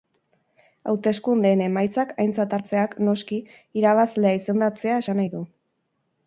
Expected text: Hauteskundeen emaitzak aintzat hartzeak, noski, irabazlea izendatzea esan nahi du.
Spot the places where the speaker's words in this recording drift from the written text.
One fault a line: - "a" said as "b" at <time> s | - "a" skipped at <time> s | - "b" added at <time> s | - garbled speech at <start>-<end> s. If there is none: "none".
none